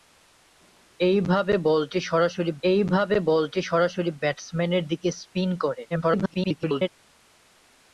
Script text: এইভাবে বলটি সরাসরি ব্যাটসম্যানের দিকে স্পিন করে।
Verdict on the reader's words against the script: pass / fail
fail